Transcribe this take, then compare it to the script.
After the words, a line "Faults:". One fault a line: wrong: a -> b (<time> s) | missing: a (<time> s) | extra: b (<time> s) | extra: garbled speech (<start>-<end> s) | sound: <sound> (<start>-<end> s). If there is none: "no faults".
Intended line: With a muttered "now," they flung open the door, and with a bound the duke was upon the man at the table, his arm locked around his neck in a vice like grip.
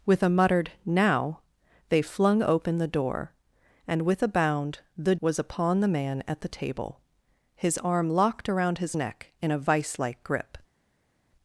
With a muttered "now," they flung open the door, and with a bound the was upon the man at the table, his arm locked around his neck in a vice like grip.
Faults:
missing: duke (5.2 s)